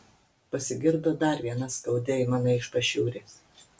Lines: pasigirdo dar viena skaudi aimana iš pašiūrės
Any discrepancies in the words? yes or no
no